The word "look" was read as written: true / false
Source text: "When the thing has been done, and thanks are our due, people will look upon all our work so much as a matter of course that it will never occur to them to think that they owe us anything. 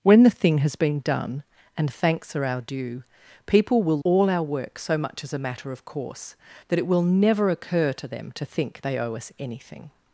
false